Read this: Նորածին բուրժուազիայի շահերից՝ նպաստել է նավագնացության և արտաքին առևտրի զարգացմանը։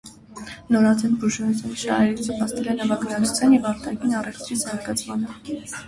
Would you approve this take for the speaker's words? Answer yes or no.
yes